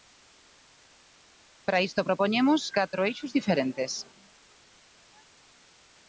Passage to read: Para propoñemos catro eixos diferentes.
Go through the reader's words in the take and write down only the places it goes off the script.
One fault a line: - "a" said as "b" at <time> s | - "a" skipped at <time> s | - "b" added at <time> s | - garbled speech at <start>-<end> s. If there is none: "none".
- "isto" added at 1.9 s